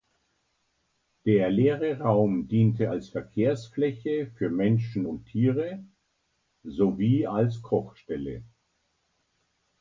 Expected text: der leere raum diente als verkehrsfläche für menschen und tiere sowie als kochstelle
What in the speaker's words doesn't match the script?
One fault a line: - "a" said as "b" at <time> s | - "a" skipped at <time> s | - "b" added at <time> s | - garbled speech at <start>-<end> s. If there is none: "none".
none